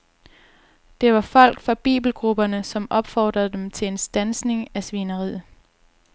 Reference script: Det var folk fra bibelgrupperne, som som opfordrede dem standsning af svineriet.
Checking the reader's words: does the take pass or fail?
fail